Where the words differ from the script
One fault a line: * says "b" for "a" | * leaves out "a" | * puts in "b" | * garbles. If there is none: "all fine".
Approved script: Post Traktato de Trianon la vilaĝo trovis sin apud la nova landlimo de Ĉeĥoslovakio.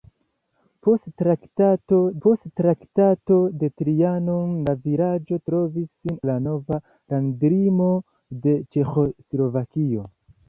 * puts in "post Traktato"
* leaves out "apud"